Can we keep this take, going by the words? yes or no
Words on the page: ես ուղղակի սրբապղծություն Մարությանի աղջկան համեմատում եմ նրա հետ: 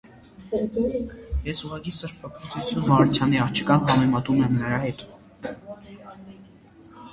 yes